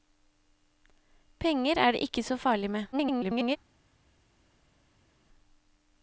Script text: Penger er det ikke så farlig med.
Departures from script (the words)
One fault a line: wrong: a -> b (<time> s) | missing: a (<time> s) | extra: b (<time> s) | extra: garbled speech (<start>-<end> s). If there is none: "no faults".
extra: garbled speech (2.9-3.6 s)